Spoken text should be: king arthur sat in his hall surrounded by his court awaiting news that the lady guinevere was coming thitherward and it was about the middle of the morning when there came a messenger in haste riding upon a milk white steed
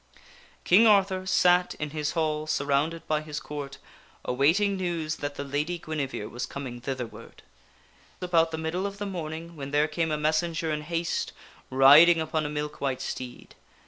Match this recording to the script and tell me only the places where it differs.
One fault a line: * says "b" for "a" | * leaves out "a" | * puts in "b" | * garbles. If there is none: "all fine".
* leaves out "and it was"